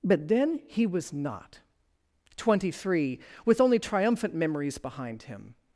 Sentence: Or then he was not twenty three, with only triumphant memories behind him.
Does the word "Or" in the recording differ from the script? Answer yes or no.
yes